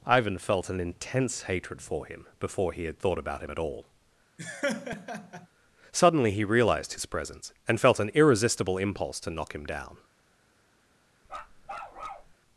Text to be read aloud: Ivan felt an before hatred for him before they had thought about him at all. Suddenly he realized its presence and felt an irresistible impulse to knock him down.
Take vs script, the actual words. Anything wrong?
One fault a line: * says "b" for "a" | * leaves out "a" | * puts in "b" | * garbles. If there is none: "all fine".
* says "intense" for "before"
* says "he" for "they"
* says "his" for "its"